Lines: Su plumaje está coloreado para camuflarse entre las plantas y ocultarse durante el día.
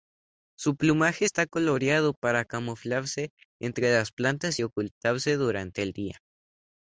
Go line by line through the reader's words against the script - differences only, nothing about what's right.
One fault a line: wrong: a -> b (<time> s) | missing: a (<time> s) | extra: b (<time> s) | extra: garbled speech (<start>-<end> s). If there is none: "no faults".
no faults